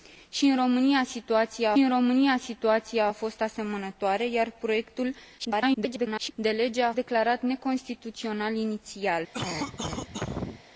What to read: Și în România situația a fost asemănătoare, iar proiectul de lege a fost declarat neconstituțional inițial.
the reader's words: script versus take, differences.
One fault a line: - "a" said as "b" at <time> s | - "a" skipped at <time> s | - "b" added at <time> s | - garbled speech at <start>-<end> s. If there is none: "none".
- "în România situația" added at 1.8 s
- garbled speech at 5.4-6.3 s
- "fost" skipped at 6.9 s